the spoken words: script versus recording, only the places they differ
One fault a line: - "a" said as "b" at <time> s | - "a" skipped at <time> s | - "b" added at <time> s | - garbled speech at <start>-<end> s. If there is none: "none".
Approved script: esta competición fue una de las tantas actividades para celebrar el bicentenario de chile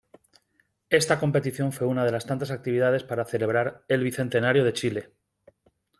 none